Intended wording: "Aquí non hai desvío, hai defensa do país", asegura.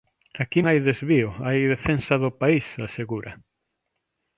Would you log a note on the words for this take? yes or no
yes